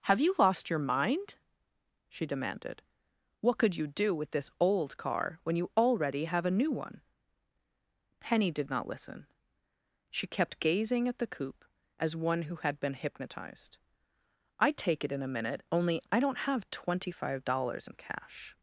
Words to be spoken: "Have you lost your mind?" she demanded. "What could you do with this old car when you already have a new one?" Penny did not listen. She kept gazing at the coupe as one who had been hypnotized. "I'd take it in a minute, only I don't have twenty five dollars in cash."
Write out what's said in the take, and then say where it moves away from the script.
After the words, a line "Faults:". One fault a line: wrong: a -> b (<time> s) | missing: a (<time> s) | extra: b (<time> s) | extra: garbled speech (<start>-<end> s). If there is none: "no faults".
"Have you lost your mind?" she demanded. "What could you do with this old car when you already have a new one?" Penny did not listen. She kept gazing at the coupe as one who had been hypnotized. "I'd take it in a minute, only I don't have twenty five dollars in cash."
Faults:
no faults